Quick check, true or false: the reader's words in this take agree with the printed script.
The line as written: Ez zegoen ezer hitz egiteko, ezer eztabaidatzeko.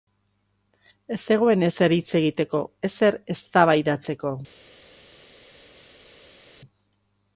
true